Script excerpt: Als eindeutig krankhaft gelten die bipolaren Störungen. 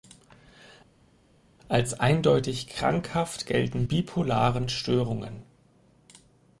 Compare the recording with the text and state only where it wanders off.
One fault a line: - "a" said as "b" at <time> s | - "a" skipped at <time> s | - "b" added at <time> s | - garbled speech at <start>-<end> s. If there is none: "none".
- "die" skipped at 3.8 s